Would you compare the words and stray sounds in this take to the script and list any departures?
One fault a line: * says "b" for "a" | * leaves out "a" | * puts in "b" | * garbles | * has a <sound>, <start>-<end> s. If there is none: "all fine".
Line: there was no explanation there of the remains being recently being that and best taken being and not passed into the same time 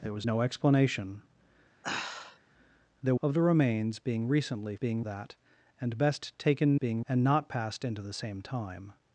* has a sigh, 1.8-2.4 s